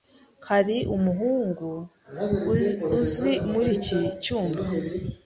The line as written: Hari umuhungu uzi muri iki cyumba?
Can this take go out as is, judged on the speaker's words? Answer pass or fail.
pass